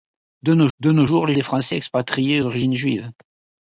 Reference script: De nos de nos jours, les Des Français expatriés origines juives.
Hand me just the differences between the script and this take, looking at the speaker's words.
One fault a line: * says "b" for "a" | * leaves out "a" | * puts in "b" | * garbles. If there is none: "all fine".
all fine